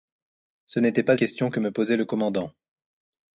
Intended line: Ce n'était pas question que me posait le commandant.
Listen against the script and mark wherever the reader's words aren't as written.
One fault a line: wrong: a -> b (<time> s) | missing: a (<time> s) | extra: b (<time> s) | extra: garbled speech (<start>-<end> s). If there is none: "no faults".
no faults